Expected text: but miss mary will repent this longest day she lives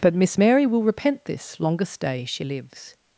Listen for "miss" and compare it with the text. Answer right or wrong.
right